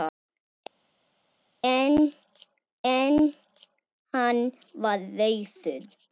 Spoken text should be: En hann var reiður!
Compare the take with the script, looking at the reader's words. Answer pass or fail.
fail